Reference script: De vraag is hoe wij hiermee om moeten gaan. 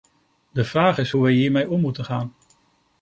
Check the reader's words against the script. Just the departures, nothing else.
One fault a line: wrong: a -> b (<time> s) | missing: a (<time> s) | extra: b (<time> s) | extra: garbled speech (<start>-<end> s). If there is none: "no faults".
no faults